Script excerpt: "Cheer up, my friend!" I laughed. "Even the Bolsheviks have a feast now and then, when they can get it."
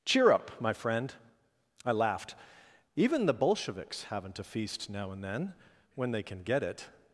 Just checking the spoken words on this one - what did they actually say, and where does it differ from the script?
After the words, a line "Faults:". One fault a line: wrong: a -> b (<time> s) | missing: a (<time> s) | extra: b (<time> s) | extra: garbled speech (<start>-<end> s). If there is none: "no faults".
"Cheer up, my friend!" I laughed. "Even the Bolsheviks haven't a feast now and then, when they can get it."
Faults:
wrong: have -> haven't (4.0 s)